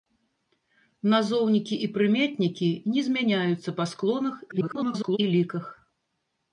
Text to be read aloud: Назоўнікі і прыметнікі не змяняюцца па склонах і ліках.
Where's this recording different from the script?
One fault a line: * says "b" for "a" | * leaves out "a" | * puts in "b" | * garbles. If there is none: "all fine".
* garbles